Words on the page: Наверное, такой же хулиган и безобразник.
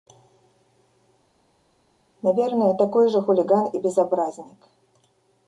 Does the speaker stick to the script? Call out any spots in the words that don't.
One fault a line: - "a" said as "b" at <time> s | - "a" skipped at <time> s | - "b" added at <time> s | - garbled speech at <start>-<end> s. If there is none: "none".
none